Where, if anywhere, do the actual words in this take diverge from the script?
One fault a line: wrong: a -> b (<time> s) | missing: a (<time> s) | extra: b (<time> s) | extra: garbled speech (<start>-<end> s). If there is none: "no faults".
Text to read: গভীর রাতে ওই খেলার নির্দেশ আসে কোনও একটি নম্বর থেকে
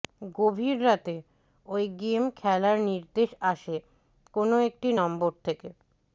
extra: গেম (2.0 s)